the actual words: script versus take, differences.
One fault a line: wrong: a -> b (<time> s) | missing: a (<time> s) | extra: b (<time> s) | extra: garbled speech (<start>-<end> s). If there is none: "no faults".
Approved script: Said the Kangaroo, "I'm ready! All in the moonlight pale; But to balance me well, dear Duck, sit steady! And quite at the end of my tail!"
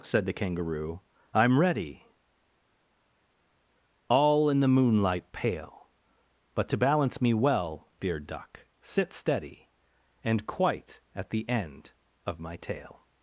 no faults